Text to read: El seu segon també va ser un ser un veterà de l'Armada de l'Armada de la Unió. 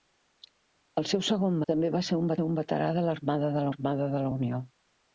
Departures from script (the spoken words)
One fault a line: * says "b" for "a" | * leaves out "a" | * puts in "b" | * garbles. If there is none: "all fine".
all fine